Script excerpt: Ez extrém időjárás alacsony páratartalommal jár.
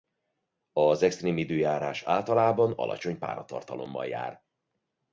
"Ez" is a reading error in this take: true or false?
true